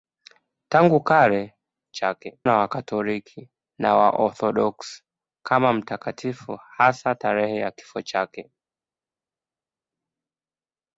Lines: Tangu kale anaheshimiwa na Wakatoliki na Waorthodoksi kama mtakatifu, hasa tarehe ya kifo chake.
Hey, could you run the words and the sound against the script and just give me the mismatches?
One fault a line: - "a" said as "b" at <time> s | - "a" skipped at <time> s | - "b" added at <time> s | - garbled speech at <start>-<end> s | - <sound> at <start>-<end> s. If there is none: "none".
- "anaheshimiwa" said as "chake" at 1.9 s